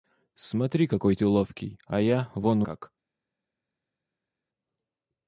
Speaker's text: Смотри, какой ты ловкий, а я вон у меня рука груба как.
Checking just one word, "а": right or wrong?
right